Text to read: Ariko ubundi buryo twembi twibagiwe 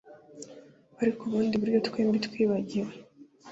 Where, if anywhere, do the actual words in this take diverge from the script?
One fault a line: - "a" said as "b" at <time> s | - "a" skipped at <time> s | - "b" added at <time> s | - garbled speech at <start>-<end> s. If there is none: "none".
none